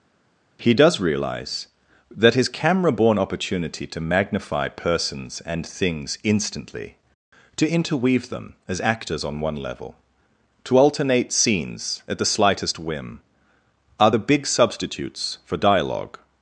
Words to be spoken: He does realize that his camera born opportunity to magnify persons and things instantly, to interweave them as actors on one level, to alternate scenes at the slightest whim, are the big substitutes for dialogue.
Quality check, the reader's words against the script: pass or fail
pass